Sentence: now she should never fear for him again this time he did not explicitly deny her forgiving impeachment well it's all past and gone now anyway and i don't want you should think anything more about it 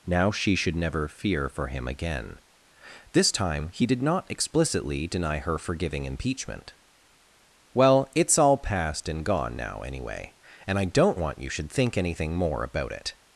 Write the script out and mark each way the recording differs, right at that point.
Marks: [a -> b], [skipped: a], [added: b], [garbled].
now she should never fear for him again this time he did not explicitly deny her forgiving impeachment well it's all past and gone now anyway and i don't want you should think anything more about it